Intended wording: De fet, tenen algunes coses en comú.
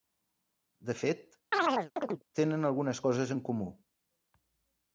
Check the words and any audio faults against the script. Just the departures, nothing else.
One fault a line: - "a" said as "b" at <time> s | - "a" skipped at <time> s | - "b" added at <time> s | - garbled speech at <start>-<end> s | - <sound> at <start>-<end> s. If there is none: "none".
- chirp at 1.5-2.2 s